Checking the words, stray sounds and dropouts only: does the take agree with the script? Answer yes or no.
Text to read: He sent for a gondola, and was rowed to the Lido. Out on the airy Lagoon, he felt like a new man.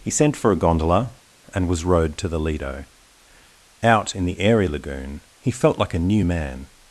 no